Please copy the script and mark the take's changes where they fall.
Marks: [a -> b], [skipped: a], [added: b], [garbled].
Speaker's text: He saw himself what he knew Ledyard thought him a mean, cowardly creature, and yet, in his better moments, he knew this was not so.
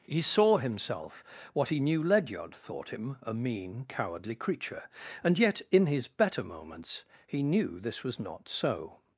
He saw himself what he knew Ledyard thought him a mean, cowardly creature, and yet, in his better moments, he knew this was not so.